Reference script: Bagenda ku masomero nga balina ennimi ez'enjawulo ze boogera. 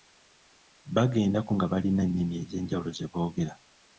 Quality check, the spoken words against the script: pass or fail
fail